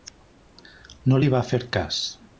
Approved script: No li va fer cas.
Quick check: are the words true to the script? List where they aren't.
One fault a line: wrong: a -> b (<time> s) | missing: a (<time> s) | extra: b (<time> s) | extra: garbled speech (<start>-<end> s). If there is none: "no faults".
no faults